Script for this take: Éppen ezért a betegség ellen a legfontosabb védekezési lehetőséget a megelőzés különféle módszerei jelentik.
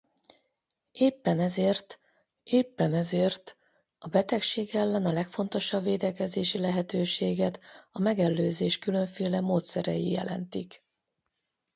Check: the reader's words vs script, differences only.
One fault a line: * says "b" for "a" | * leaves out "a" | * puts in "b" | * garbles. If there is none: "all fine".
* puts in "éppen ezért"